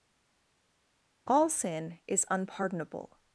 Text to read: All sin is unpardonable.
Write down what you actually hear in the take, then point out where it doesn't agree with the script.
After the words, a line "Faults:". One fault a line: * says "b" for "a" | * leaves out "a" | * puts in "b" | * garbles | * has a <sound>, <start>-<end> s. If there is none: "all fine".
All sin is unpardonable.
Faults:
all fine